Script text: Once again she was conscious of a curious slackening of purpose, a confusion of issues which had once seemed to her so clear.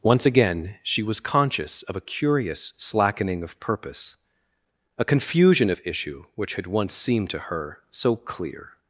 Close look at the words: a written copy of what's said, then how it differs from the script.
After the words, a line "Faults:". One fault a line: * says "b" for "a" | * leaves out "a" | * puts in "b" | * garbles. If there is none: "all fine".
Once again she was conscious of a curious slackening of purpose, a confusion of issue which had once seemed to her so clear.
Faults:
* says "issue" for "issues"